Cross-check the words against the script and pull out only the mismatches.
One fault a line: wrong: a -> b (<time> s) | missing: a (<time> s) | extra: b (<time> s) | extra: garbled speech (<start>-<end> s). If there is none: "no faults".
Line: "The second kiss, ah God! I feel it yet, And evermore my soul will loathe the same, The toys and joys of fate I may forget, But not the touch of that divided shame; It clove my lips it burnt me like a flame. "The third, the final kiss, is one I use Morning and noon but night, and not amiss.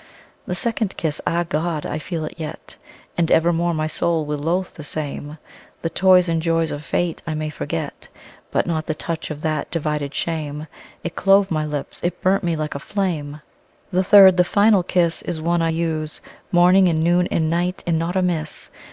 wrong: but -> and (17.3 s)